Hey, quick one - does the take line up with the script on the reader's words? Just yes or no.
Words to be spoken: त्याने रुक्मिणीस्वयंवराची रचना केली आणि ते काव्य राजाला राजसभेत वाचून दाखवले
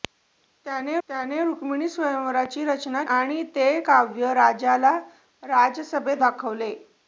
no